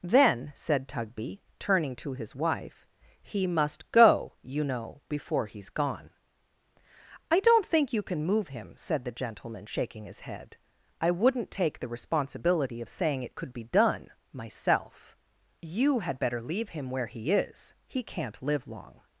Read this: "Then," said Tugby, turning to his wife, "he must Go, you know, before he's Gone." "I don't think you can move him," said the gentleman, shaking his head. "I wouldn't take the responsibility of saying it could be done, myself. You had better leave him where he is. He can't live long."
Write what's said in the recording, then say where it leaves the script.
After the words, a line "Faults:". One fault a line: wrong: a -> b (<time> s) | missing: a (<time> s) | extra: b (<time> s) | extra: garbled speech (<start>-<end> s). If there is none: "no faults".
"Then," said Tugby, turning to his wife, "he must Go, you know, before he's Gone." "I don't think you can move him," said the gentleman, shaking his head. "I wouldn't take the responsibility of saying it could be done, myself. You had better leave him where he is. He can't live long."
Faults:
no faults